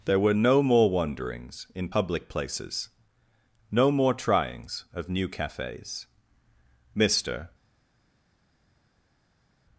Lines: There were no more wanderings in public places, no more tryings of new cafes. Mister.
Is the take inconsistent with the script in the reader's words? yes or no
no